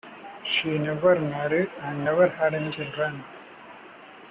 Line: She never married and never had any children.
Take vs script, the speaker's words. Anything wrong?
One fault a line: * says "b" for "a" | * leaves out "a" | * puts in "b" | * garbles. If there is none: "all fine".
all fine